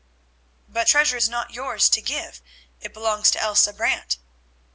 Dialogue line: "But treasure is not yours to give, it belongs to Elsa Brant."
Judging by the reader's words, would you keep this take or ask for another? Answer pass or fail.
pass